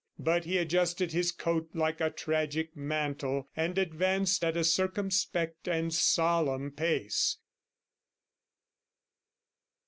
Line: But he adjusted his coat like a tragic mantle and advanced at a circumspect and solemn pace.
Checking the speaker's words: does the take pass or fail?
pass